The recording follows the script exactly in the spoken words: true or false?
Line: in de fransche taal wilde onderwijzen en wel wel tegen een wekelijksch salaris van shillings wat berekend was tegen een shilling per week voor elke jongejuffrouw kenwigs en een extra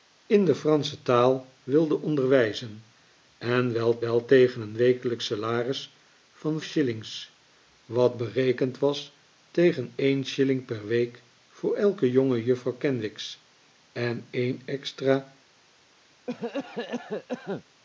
true